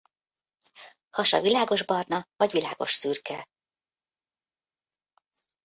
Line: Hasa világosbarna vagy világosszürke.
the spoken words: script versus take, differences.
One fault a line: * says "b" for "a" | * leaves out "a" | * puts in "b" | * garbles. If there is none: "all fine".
all fine